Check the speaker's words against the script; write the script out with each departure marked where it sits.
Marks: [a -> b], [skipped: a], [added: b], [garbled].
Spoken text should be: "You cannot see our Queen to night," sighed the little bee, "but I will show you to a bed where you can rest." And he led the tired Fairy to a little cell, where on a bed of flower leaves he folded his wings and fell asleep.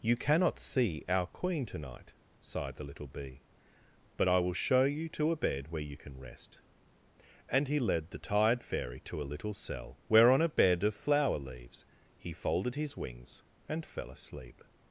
"You cannot see our Queen to night," sighed the little bee, "but I will show you to a bed where you can rest." And he led the tired Fairy to a little cell, where on a bed of flower leaves he folded his wings and fell asleep.